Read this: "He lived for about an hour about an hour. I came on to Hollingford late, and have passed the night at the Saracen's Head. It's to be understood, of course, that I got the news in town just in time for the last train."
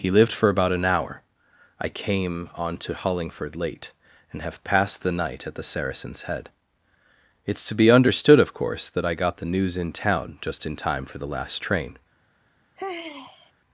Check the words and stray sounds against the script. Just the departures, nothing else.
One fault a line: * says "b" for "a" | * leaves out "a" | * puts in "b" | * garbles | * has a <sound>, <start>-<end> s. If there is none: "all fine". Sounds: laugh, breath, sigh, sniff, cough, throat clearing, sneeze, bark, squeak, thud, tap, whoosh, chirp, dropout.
* leaves out "about an hour"
* has a sigh, 12.8-13.5 s